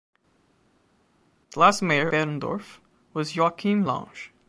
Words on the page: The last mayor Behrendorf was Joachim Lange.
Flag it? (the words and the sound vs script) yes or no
no